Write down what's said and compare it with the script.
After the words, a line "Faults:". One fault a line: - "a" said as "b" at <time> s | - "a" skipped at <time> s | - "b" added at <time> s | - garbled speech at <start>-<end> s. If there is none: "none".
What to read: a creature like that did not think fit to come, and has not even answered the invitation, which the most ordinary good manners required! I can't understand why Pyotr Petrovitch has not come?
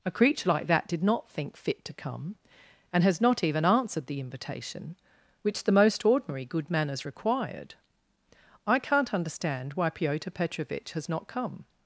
a creature like that did not think fit to come, and has not even answered the invitation, which the most ordinary good manners required! I can't understand why Pyotr Petrovitch has not come?
Faults:
none